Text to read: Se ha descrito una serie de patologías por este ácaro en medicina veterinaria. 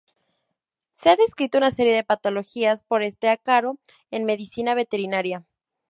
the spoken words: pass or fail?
pass